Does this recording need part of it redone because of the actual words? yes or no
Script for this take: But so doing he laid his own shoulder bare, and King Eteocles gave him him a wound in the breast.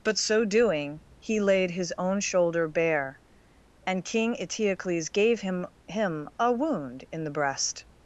no